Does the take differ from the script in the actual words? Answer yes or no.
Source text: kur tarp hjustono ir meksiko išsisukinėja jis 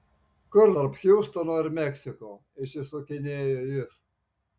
no